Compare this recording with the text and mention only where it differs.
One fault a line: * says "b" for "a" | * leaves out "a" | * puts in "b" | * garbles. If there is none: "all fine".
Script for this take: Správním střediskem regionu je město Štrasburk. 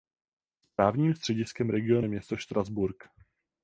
all fine